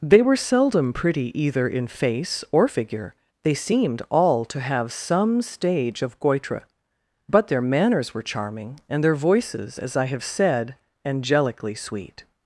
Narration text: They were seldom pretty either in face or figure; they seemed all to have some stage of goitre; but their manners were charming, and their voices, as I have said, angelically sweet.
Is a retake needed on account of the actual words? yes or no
no